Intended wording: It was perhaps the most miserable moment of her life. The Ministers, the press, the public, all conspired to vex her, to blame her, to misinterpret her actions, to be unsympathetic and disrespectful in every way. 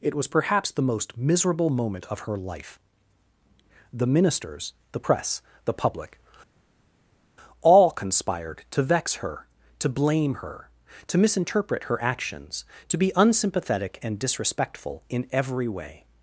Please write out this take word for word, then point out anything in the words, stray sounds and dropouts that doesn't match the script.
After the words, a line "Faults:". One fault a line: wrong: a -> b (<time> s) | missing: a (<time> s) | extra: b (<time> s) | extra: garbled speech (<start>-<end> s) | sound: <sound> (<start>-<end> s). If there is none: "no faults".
It was perhaps the most miserable moment of her life. The Ministers, the press, the public, all conspired to vex her, to blame her, to misinterpret her actions, to be unsympathetic and disrespectful in every way.
Faults:
no faults